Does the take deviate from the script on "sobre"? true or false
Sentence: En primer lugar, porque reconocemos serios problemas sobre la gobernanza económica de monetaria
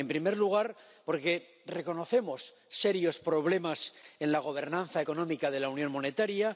true